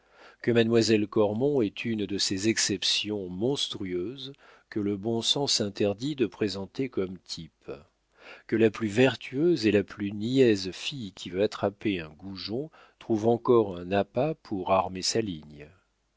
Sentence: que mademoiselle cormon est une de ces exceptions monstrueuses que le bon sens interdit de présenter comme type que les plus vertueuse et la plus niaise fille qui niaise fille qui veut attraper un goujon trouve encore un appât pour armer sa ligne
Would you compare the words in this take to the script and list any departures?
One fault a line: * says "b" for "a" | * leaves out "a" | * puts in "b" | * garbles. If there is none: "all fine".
* says "la" for "les"
* leaves out "niaise fille qui"